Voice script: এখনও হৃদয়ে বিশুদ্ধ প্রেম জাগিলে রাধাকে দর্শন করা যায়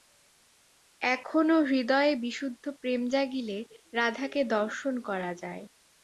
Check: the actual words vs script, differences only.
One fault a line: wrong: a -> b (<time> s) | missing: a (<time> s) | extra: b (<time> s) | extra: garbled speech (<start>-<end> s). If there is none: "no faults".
no faults